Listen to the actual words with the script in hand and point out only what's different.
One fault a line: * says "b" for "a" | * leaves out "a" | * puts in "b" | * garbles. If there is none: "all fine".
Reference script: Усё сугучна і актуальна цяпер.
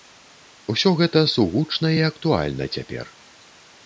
* puts in "гэта"